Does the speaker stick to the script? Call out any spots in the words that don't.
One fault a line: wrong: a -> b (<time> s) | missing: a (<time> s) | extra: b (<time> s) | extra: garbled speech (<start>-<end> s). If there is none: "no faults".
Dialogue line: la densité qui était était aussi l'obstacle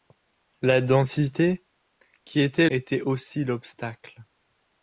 no faults